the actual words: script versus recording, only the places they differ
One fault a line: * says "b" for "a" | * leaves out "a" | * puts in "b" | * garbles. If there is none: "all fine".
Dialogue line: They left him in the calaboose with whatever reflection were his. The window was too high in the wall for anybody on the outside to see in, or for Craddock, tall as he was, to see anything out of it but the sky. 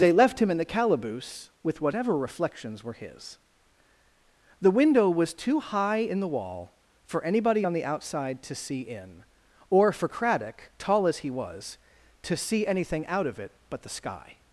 * says "reflections" for "reflection"